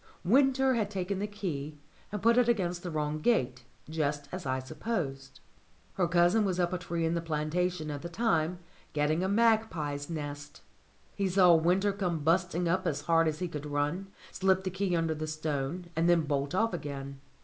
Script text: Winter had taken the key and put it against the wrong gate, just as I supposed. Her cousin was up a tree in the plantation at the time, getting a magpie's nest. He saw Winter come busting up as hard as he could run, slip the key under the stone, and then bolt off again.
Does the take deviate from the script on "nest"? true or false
false